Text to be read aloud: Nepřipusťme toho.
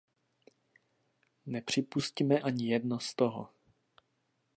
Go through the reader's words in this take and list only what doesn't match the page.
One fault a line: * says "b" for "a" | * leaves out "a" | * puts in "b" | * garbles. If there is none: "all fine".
* puts in "ani jedno z"